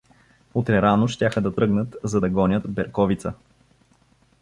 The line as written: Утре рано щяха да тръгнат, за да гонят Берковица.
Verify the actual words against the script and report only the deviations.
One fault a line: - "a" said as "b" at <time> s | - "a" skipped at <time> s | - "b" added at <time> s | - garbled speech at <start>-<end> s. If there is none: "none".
none